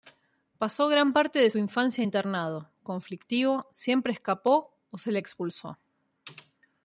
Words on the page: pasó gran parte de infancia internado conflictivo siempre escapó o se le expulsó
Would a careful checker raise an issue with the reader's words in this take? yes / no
no